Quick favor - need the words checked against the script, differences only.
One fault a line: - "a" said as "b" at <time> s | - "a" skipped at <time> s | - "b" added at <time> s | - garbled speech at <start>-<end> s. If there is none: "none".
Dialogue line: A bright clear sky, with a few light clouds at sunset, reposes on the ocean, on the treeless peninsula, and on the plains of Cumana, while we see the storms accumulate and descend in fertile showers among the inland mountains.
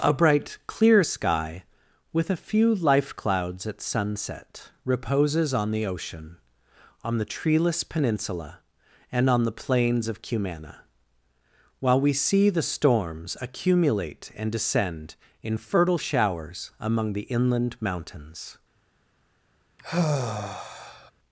- "light" said as "life" at 2.7 s